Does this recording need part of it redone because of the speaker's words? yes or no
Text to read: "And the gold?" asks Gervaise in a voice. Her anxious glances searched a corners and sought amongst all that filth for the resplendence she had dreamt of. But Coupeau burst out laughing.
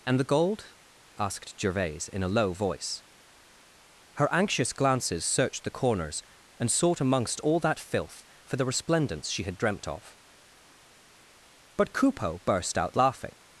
yes